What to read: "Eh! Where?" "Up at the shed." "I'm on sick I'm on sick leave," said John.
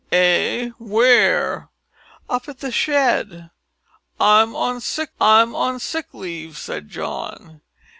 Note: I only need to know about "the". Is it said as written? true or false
true